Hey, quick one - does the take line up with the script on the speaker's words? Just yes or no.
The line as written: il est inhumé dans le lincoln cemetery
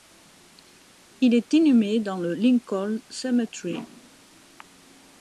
yes